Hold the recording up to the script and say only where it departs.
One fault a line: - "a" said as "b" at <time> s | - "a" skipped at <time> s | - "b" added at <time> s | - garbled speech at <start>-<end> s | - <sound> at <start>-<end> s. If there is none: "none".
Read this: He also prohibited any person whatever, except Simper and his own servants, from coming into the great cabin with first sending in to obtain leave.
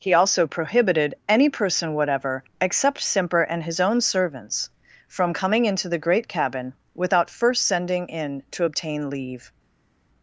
- "with" said as "without" at 7.0 s